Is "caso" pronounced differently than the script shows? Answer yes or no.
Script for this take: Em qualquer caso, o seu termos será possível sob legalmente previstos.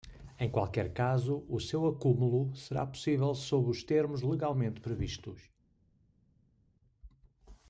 no